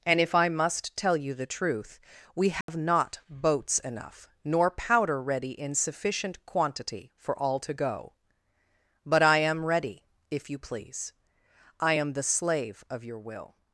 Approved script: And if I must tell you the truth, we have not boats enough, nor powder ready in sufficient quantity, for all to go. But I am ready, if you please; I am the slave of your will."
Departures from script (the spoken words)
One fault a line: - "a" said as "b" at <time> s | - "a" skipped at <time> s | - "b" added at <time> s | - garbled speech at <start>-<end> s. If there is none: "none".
none